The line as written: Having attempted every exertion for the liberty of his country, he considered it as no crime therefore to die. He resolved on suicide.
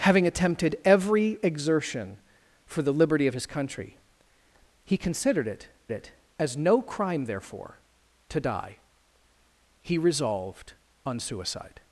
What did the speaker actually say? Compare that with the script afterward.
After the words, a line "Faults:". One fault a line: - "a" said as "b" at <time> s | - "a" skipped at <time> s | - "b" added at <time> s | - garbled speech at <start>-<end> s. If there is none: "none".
Having attempted every exertion for the liberty of his country, he considered it it as no crime therefore to die. He resolved on suicide.
Faults:
- "it" added at 5.9 s